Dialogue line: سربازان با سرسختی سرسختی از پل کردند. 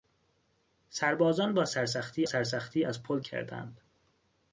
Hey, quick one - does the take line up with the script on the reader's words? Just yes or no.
yes